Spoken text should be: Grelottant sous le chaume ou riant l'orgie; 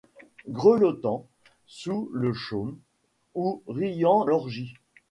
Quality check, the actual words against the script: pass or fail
pass